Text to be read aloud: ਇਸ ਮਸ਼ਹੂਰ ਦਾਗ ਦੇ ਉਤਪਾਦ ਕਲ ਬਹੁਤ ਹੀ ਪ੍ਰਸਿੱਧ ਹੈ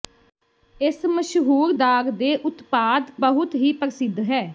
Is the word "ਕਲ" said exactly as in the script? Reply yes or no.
no